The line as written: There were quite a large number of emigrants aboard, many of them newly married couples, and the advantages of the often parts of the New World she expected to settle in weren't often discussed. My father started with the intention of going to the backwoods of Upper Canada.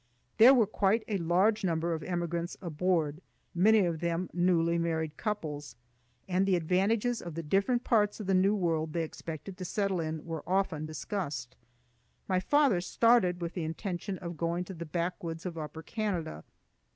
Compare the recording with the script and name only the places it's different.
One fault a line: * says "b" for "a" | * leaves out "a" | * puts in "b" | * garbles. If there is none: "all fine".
* says "different" for "often"
* says "they" for "she"
* says "were" for "weren't"